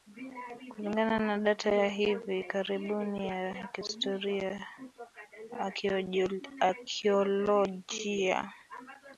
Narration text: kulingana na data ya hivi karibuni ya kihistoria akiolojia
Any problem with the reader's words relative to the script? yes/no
no